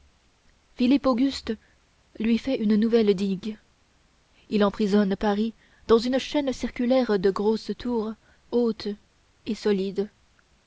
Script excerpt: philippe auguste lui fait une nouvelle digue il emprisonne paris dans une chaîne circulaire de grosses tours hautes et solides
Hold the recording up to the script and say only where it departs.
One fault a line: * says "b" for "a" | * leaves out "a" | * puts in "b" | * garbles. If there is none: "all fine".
all fine